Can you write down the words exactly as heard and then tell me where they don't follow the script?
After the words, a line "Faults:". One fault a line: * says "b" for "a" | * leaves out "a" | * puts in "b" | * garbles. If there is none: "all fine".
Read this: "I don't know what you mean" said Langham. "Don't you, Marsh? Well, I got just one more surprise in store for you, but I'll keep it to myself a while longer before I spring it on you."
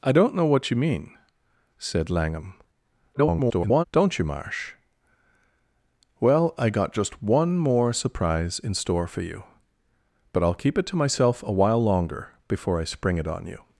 "I don't know what you mean" said Langham. [garbled] "Don't you, Marsh? Well, I got just one more surprise in store for you, but I'll keep it to myself a while longer before I spring it on you."
Faults:
* garbles